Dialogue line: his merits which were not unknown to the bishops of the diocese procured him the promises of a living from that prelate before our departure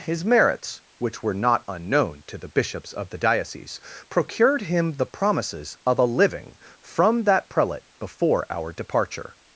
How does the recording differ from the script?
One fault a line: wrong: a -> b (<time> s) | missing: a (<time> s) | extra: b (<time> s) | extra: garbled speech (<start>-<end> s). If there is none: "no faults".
no faults